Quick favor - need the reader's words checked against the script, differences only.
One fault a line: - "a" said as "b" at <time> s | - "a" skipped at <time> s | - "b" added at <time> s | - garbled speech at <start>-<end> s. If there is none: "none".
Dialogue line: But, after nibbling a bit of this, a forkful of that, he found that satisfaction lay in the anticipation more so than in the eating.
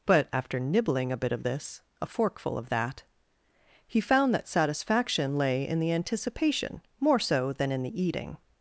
none